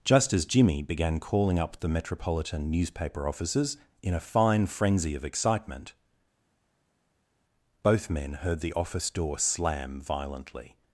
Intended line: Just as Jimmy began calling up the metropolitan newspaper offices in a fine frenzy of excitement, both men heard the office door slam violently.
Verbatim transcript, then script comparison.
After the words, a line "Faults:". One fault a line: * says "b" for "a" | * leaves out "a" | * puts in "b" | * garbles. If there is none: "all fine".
Just as Jimmy began calling up the metropolitan newspaper offices in a fine frenzy of excitement, both men heard the office door slam violently.
Faults:
all fine